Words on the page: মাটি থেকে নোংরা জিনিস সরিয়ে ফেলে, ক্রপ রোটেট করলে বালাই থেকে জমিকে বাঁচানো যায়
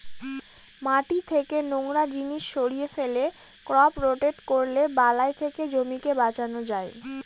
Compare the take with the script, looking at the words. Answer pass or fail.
pass